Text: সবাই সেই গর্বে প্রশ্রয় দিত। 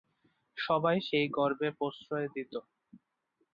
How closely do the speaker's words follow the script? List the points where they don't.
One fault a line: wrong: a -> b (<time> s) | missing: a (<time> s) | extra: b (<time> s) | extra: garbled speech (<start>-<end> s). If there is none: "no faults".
no faults